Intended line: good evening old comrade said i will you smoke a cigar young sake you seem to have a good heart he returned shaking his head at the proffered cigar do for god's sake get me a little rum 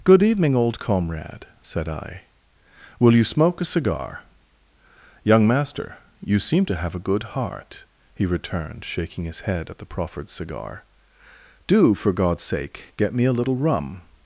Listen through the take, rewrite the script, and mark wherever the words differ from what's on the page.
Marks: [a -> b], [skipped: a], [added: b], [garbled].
good evening old comrade said i will you smoke a cigar young [sake -> master] you seem to have a good heart he returned shaking his head at the proffered cigar do for god's sake get me a little rum